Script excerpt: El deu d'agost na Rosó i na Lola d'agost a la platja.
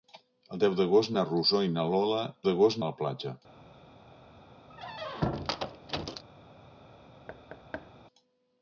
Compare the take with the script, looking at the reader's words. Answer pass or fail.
pass